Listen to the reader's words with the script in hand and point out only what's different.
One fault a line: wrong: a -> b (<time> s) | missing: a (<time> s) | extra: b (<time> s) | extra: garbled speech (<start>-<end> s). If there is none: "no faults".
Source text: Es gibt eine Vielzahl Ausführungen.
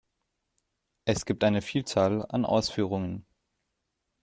extra: an (2.3 s)